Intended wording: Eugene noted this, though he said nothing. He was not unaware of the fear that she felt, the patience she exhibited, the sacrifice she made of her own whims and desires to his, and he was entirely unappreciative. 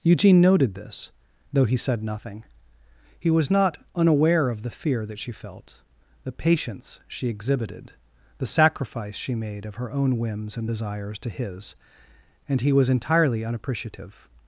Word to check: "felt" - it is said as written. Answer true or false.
true